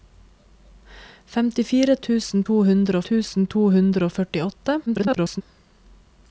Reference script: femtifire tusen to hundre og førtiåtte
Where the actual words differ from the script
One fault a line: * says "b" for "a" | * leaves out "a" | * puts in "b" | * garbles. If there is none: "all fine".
* puts in "tusen to hundre"
* garbles